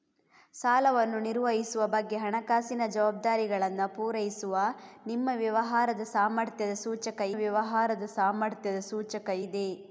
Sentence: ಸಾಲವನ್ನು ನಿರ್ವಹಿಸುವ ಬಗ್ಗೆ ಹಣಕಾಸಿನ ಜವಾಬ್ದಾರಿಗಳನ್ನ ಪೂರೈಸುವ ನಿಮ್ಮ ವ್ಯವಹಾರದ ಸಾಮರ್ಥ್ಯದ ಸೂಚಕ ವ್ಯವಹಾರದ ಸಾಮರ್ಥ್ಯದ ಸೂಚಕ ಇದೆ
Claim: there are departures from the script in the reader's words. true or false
false